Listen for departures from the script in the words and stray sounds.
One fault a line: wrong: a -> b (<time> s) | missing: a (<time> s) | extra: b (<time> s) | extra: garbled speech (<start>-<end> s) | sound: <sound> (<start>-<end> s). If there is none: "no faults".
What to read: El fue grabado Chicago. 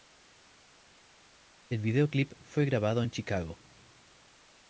extra: videoclip (1.8 s)
extra: en (3.0 s)